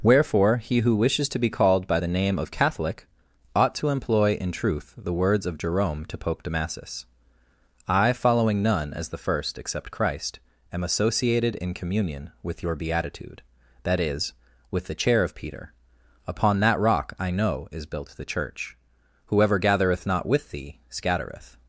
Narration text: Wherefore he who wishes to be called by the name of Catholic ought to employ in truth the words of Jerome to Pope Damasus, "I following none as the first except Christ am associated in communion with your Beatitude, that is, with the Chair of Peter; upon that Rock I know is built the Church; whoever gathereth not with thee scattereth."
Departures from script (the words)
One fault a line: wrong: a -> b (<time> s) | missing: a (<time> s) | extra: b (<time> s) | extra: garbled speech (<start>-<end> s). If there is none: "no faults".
no faults